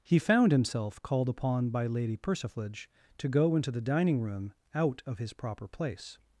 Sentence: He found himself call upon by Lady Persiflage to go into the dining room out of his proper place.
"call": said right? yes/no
no